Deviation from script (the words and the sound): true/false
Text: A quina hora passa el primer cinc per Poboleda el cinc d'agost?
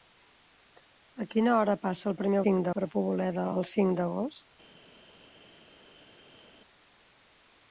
false